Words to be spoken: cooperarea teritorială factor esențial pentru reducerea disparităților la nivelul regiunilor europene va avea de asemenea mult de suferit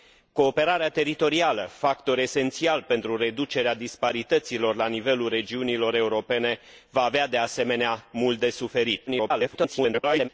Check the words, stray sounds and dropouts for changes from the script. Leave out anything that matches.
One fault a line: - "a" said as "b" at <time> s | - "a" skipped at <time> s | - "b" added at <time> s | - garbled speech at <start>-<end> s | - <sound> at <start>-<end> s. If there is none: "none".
- garbled speech at 9.1-10.3 s